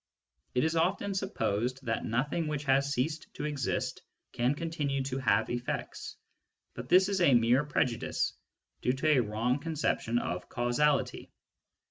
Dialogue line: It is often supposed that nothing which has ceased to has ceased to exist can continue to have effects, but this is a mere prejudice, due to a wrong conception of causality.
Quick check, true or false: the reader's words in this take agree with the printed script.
false